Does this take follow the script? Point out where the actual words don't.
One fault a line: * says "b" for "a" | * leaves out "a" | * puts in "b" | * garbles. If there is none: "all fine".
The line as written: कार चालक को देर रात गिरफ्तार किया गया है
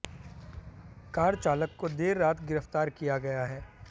all fine